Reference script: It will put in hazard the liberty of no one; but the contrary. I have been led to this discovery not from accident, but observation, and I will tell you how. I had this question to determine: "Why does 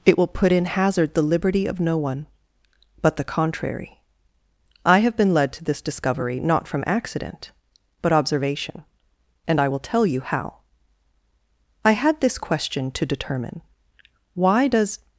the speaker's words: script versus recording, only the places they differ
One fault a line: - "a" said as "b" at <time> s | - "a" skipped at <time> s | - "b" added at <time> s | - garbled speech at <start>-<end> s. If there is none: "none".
none